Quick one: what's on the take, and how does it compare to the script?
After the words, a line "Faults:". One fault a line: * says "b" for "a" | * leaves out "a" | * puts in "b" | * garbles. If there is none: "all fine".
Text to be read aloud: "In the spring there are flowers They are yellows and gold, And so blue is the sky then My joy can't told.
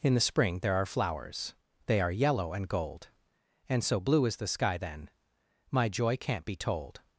"In the spring there are flowers They are yellow and gold, And so blue is the sky then My joy can't be told.
Faults:
* says "yellow" for "yellows"
* puts in "be"